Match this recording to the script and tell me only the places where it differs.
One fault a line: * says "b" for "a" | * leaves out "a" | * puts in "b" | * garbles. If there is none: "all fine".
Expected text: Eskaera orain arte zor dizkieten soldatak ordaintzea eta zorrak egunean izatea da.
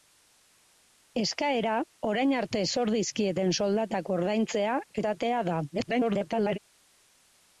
* leaves out "eta zorrak egunean"
* garbles